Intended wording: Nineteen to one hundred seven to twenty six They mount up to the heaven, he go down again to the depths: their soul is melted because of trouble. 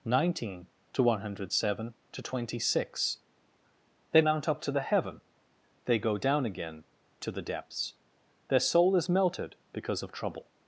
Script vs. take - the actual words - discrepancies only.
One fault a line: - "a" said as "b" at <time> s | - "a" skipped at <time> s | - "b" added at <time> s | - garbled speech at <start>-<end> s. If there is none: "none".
- "he" said as "they" at 5.9 s